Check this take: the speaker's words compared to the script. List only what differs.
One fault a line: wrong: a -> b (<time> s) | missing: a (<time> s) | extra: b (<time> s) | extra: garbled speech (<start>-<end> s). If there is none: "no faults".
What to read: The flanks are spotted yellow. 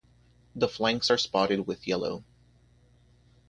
extra: with (1.7 s)